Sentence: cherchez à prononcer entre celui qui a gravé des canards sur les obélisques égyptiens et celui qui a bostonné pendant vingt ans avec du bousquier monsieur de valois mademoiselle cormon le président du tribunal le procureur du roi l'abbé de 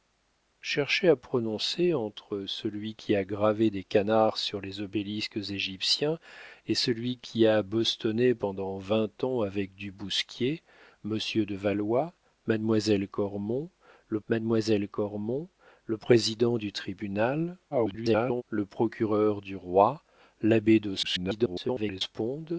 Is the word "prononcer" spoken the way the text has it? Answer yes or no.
yes